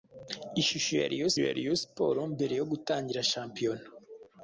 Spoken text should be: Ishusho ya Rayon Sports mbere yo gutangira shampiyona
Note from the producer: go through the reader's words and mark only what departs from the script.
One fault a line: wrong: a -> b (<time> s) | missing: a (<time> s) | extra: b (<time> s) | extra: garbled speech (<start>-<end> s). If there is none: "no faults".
extra: ya Rayon (1.4 s)